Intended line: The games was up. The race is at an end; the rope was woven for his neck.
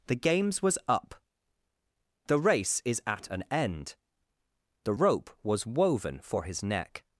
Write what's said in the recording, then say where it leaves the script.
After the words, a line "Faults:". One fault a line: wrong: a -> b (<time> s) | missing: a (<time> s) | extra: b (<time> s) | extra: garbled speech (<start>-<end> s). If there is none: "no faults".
The games was up. The race is at an end; the rope was woven for his neck.
Faults:
no faults